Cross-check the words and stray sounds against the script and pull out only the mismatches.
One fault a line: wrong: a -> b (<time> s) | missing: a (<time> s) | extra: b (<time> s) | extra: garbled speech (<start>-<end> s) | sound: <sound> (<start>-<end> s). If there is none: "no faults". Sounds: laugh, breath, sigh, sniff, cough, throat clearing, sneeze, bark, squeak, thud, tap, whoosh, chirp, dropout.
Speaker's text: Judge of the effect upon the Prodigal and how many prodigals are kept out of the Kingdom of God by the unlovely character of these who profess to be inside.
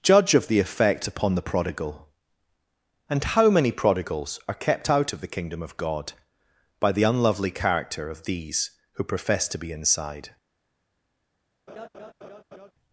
sound: laugh (11.7-12.7 s)